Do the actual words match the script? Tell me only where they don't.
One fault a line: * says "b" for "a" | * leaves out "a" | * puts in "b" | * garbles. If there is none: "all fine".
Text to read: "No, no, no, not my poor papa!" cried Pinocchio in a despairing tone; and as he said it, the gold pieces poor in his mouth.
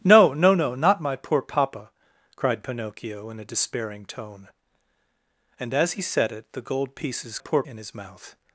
all fine